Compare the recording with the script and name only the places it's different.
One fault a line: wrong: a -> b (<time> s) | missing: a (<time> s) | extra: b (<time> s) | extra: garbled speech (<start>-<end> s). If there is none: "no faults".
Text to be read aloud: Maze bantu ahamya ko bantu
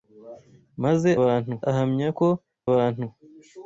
no faults